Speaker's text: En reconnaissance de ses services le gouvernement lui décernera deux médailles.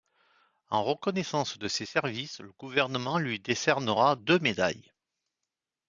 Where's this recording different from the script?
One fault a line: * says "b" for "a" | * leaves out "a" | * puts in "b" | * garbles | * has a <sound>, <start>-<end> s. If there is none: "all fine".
all fine